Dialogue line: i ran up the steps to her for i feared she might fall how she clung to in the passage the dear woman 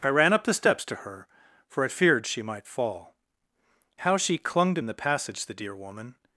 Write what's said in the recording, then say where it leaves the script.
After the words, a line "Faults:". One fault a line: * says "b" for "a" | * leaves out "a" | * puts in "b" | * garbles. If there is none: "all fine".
i ran up the steps to her for i feared she might fall how she clung to in the passage the dear woman
Faults:
all fine